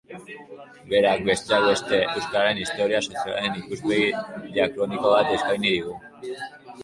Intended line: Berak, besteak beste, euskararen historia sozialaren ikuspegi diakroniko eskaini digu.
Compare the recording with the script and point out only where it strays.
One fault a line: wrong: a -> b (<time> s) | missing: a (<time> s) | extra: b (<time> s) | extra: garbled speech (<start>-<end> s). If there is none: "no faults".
extra: bat (5.2 s)